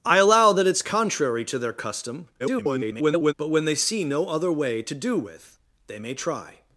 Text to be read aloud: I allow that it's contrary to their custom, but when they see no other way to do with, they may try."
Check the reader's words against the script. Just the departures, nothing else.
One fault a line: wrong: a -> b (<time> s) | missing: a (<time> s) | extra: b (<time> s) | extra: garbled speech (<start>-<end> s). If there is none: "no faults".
extra: garbled speech (2.4-3.3 s)